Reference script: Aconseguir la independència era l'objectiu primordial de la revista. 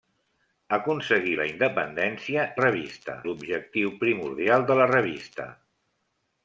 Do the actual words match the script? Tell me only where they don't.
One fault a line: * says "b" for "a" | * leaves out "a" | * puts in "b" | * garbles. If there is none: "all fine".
* says "revista" for "era"